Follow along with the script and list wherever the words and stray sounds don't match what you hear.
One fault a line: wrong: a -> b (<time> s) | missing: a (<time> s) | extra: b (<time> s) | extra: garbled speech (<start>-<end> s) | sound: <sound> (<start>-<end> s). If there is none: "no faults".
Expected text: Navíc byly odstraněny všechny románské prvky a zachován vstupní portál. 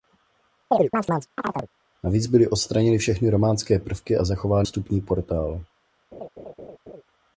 sound: chirp (0.7-1.7 s)
sound: laugh (6.1-7.0 s)